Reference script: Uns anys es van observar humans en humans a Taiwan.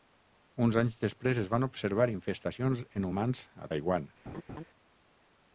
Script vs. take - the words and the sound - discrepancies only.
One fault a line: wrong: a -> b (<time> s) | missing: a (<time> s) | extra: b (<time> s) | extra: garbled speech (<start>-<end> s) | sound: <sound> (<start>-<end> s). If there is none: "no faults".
extra: després (1.0 s)
wrong: humans -> infestacions (2.1 s)
sound: laugh (4.3-4.6 s)